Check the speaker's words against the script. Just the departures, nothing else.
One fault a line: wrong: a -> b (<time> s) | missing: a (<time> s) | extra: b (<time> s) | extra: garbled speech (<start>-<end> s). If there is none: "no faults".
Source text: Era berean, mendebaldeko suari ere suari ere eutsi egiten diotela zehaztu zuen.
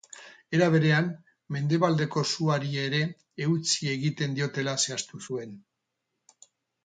missing: suari ere (3.0 s)